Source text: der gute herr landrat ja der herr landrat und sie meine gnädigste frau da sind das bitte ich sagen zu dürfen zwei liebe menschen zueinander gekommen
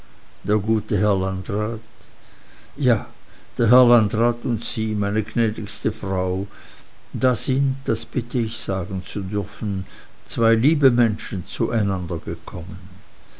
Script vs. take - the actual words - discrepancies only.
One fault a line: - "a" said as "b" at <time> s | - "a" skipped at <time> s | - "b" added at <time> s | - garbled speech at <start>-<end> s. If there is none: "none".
none